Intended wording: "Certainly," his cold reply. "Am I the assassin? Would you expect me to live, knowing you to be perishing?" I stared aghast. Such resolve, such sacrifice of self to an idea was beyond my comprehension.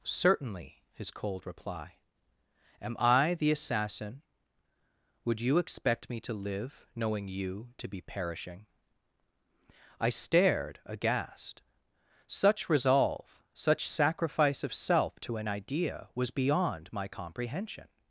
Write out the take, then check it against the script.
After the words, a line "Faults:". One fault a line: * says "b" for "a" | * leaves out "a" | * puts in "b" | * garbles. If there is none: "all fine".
"Certainly," his cold reply. "Am I the assassin? Would you expect me to live, knowing you to be perishing?" I stared aghast. Such resolve, such sacrifice of self to an idea was beyond my comprehension.
Faults:
all fine